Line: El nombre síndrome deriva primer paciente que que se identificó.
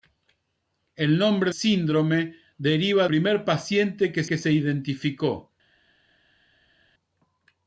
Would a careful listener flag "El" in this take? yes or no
no